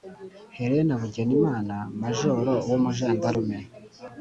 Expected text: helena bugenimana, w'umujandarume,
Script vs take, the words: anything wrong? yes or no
yes